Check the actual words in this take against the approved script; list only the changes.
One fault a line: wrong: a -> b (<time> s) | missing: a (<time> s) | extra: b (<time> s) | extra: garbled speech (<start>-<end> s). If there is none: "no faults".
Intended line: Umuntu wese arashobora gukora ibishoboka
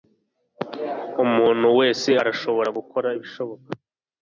no faults